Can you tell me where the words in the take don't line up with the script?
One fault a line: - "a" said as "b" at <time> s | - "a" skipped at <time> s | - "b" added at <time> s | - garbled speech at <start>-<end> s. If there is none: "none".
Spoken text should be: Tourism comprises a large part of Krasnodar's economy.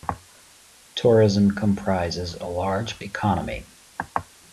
- "part of Krasnodar's" skipped at 3.0 s